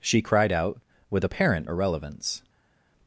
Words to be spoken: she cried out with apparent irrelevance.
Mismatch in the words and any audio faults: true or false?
false